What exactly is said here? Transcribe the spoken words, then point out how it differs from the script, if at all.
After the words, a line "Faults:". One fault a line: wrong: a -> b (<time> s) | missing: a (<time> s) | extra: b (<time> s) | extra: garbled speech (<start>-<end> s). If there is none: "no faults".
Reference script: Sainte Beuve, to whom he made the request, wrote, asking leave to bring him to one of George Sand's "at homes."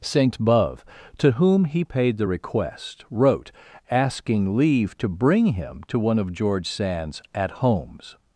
Sainte Beuve, to whom he paid the request, wrote, asking leave to bring him to one of George Sand's "at homes."
Faults:
wrong: made -> paid (1.8 s)